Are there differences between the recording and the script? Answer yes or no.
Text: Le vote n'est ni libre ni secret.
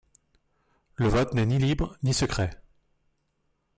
no